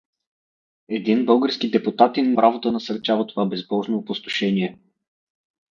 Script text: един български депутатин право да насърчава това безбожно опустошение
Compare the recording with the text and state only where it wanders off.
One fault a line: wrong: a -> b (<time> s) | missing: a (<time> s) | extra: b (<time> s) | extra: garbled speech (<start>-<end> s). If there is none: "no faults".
no faults